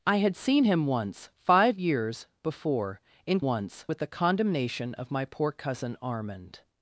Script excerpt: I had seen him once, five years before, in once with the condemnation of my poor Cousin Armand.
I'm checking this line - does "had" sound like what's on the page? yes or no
yes